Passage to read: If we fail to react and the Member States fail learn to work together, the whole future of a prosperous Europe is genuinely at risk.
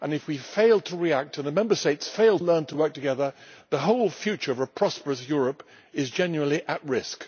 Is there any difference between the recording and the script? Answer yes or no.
no